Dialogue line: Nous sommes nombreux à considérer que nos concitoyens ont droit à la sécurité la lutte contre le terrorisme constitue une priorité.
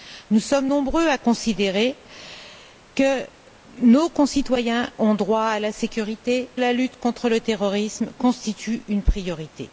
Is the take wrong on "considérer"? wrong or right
right